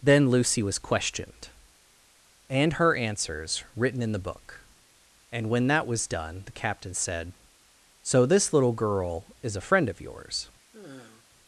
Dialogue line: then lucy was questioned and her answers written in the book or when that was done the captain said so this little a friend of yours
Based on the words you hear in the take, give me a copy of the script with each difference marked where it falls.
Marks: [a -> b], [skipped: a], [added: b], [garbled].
then lucy was questioned and her answers written in the book [or -> and] when that was done the captain said so this little [added: girl is] a friend of yours